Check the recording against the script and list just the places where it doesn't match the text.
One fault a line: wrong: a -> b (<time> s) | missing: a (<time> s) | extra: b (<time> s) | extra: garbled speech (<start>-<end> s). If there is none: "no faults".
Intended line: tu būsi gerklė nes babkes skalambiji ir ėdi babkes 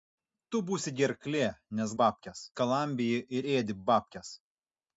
no faults